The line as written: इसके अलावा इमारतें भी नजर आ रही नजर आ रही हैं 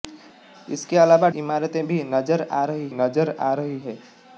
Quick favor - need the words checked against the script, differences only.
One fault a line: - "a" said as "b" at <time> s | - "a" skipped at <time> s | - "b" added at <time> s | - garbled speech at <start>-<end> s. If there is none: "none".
none